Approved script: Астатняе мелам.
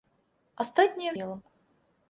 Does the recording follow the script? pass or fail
pass